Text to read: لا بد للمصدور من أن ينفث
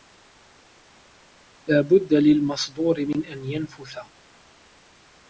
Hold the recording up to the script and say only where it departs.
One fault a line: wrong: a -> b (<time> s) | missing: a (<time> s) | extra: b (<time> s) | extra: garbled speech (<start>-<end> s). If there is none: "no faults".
no faults